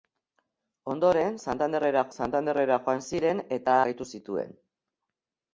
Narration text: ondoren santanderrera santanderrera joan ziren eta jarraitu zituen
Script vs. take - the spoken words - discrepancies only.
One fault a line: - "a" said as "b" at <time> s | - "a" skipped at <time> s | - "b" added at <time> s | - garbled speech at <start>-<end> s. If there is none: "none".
none